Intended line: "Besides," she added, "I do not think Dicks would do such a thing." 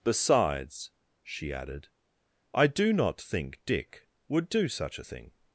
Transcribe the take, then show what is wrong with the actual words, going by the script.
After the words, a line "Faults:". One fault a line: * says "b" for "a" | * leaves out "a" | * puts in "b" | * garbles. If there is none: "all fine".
"Besides," she added, "I do not think Dick would do such a thing."
Faults:
* says "Dick" for "Dicks"